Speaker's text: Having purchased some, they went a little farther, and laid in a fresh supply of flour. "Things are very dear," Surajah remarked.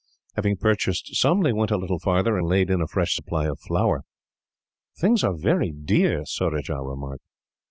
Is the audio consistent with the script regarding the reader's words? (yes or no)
yes